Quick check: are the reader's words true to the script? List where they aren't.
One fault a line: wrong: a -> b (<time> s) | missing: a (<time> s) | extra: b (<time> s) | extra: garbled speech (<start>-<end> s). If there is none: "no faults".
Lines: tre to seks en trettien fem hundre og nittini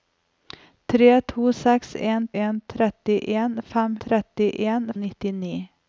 extra: en (2.4 s)
wrong: hundre -> trettien (4.1 s)